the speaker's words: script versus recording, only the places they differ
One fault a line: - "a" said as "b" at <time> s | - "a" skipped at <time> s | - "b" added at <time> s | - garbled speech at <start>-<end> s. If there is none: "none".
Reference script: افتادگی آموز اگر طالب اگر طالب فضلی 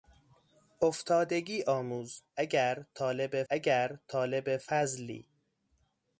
none